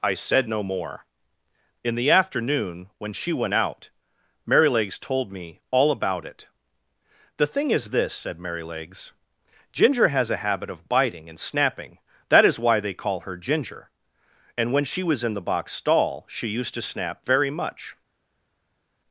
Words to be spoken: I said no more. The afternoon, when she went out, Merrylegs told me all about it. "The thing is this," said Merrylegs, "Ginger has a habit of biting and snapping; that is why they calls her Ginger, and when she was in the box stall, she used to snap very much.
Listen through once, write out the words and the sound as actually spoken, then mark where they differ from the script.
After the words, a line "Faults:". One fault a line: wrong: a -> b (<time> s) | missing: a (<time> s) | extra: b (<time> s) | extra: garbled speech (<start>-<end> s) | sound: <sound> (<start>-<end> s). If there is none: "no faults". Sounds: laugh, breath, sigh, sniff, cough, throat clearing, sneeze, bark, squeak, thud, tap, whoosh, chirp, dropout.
I said no more. In the afternoon, when she went out, Merrylegs told me all about it. "The thing is this," said Merrylegs, "Ginger has a habit of biting and snapping; that is why they call her Ginger, and when she was in the box stall, she used to snap very much.
Faults:
extra: In (1.8 s)
wrong: calls -> call (12.9 s)